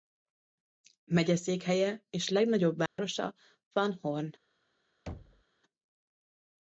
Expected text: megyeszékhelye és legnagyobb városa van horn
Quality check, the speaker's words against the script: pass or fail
pass